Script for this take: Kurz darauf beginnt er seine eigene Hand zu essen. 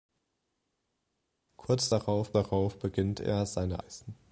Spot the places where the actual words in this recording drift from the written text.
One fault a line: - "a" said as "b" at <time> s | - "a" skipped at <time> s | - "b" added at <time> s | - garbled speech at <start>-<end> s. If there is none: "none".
- "darauf" added at 2.3 s
- "eigene Hand zu" skipped at 3.8 s